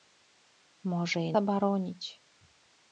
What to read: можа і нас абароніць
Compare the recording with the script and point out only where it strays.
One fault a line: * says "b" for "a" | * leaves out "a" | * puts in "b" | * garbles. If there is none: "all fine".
* leaves out "нас"